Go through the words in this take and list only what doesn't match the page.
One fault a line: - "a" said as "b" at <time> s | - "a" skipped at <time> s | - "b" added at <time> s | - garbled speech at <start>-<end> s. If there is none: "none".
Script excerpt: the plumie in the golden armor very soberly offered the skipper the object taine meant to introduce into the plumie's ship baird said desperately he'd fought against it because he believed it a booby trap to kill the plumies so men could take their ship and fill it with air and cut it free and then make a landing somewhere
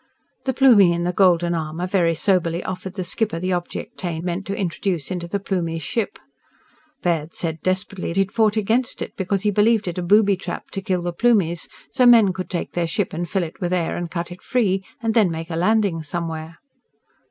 none